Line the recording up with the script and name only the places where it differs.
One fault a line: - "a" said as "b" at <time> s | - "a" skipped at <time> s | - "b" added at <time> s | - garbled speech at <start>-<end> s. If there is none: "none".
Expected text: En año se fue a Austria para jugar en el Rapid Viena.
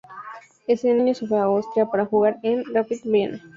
none